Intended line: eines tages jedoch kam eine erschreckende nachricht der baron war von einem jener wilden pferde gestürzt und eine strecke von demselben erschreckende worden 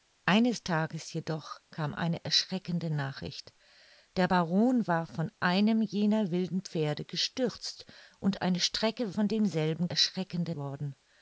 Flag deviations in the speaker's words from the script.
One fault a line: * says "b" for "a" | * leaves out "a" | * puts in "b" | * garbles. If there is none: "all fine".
all fine